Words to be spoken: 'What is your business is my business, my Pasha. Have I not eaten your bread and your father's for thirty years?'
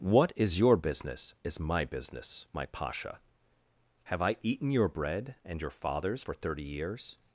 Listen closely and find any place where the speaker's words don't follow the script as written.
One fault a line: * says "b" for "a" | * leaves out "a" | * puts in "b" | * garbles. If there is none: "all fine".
* leaves out "not"